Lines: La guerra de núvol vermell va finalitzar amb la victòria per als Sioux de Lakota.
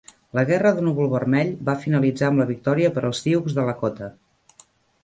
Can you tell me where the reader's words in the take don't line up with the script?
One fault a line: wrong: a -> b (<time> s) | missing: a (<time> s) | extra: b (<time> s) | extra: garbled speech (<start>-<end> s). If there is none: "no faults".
no faults